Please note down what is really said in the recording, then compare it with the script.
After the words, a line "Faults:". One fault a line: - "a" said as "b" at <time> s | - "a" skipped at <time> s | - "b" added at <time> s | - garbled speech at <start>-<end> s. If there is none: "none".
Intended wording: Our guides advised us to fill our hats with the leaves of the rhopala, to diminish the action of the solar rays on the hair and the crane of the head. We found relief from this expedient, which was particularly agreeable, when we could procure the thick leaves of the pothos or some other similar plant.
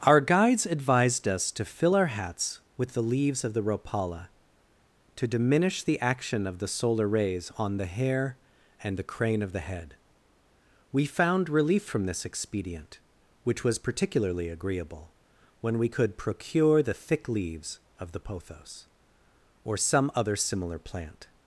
Our guides advised us to fill our hats with the leaves of the rhopala, to diminish the action of the solar rays on the hair and the crane of the head. We found relief from this expedient, which was particularly agreeable, when we could procure the thick leaves of the pothos or some other similar plant.
Faults:
none